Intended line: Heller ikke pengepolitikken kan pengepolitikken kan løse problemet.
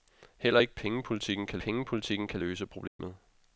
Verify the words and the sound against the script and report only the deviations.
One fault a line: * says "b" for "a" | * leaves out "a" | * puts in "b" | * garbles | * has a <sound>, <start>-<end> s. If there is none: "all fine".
* has a dropout, 2.9-3.0 s